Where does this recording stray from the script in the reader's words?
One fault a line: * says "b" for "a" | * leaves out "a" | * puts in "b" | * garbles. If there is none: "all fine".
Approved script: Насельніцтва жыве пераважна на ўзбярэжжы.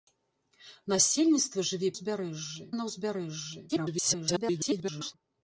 * says "ўзбярэжжы" for "пераважна"
* garbles